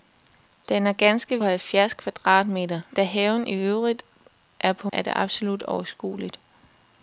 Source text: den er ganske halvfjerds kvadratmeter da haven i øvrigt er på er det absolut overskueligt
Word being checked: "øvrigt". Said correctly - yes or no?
yes